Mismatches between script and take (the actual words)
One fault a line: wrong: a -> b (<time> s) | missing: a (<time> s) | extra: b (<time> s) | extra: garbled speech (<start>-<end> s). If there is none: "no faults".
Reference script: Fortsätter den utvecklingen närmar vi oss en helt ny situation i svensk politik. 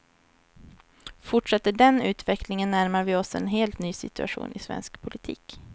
no faults